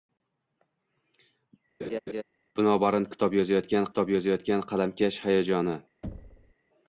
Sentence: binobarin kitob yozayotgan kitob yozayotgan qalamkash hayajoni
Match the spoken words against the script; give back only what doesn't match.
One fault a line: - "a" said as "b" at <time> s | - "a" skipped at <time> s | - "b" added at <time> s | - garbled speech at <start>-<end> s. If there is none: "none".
none